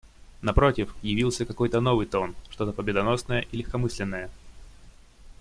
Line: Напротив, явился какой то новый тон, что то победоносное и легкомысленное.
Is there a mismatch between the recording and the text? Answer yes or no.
no